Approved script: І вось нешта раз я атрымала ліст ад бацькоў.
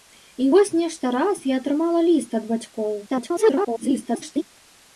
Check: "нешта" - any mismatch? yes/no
no